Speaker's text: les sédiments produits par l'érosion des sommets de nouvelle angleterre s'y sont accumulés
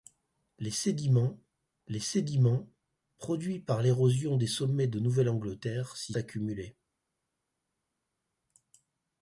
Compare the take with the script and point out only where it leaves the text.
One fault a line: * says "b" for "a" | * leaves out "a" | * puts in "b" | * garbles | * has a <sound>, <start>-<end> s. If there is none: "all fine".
* puts in "les sédiments"
* leaves out "sont"